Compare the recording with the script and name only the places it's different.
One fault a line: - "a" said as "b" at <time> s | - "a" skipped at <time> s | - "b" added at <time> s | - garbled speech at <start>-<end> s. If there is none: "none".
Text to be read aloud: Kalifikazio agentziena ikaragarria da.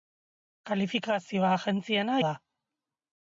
- "ikaragarria" skipped at 2.1 s